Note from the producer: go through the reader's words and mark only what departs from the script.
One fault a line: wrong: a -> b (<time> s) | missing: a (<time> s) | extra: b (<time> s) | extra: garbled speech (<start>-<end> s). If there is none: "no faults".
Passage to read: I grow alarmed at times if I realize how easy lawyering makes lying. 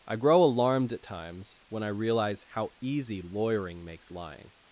wrong: if -> when (1.7 s)